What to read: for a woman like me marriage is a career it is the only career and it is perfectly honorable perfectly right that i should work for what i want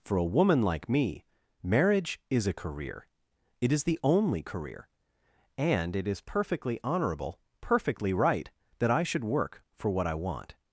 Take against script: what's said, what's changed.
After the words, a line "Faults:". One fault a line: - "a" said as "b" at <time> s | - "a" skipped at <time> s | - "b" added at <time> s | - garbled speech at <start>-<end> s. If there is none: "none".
for a woman like me marriage is a career it is the only career and it is perfectly honorable perfectly right that i should work for what i want
Faults:
none